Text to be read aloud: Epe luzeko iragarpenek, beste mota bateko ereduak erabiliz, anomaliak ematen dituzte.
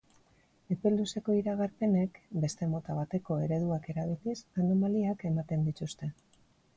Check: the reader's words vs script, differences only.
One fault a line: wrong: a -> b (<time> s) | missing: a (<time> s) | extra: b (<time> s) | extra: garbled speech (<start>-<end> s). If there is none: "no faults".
no faults